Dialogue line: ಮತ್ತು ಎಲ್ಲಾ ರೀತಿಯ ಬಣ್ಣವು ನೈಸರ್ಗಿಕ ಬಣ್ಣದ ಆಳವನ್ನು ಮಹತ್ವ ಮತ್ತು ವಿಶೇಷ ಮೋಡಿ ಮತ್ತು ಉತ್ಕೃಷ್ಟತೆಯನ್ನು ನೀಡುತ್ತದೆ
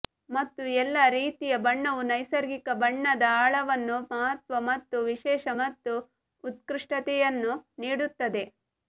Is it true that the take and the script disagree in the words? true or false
true